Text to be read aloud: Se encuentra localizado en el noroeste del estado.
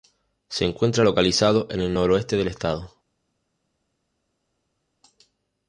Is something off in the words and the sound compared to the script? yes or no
no